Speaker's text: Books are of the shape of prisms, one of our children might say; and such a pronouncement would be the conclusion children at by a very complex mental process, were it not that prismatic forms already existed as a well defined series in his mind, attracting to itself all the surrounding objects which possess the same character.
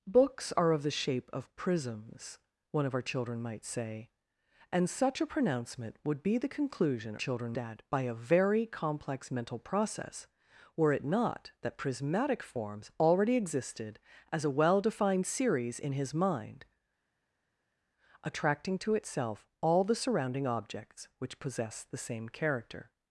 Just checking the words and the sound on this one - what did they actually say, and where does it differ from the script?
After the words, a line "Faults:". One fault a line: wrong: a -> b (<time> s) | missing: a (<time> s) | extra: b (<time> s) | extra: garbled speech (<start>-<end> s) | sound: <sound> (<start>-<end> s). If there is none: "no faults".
Books are of the shape of prisms, one of our children might say; and such a pronouncement would be the conclusion children at by a very complex mental process, were it not that prismatic forms already existed as a well defined series in his mind, attracting to itself all the surrounding objects which possess the same character.
Faults:
no faults